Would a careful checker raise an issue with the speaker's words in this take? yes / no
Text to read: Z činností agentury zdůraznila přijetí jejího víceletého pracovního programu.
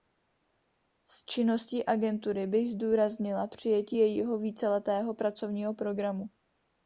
yes